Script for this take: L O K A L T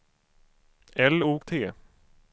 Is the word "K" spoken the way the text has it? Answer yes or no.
no